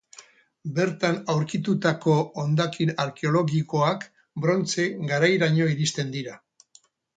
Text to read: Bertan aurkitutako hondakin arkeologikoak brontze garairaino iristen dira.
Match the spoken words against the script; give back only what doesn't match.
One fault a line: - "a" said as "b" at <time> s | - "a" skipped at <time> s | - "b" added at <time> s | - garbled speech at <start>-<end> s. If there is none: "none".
none